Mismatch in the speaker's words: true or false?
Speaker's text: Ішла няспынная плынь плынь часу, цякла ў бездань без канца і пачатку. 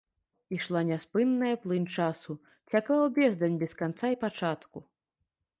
true